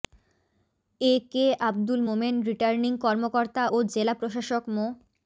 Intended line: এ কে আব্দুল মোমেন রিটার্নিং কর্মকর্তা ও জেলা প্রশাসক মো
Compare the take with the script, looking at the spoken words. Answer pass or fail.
pass